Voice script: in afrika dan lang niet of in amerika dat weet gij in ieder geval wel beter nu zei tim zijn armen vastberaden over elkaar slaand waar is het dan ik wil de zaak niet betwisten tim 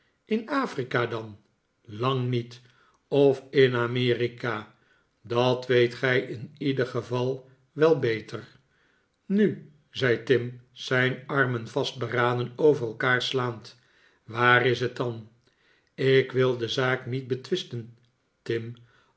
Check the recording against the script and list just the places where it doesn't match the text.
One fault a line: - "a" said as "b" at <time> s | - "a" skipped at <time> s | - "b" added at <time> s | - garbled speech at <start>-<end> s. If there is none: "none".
none